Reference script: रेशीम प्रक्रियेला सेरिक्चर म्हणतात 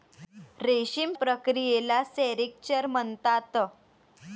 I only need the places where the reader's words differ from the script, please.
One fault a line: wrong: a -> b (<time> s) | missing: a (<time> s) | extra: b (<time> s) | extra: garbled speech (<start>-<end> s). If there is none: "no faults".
no faults